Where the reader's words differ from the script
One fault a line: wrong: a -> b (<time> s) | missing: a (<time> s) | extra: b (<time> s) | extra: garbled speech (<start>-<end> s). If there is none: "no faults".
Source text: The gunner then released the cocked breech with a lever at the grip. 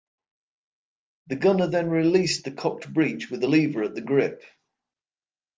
no faults